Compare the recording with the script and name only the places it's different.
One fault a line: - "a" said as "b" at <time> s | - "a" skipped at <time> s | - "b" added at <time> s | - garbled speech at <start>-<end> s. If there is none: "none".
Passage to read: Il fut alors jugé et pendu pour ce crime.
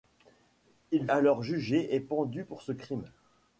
- "fut" skipped at 1.1 s